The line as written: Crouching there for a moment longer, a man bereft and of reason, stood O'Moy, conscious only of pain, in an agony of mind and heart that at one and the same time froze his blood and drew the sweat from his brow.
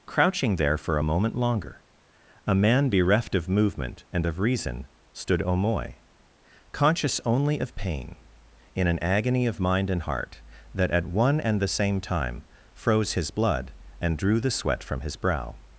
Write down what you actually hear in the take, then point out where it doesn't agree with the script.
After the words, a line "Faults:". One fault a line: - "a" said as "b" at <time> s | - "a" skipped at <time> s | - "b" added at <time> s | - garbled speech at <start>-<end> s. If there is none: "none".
Crouching there for a moment longer, a man bereft of movement and of reason, stood O'Moy, conscious only of pain, in an agony of mind and heart that at one and the same time froze his blood and drew the sweat from his brow.
Faults:
- "of movement" added at 3.4 s